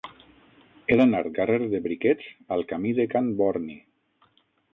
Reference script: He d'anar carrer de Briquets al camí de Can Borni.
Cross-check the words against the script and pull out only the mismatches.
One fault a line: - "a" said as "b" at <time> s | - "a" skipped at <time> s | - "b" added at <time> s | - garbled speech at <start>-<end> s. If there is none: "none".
none